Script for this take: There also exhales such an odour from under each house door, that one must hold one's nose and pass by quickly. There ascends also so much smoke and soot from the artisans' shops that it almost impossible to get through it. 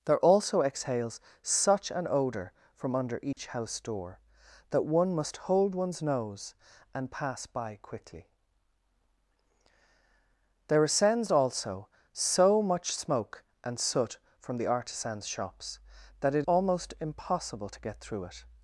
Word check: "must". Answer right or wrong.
right